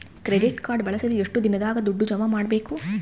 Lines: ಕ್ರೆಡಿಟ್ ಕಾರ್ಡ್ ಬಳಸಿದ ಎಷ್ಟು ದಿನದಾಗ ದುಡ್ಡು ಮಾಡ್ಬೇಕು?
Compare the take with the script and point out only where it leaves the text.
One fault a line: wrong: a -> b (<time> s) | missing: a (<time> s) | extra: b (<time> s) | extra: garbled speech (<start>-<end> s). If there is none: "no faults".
extra: ಜಮಾ (2.0 s)